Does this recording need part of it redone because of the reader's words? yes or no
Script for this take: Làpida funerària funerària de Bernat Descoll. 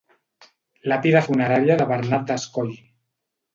yes